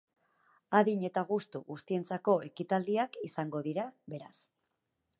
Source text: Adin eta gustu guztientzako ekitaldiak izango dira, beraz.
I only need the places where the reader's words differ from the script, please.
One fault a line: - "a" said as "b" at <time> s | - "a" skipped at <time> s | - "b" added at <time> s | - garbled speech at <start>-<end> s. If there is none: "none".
none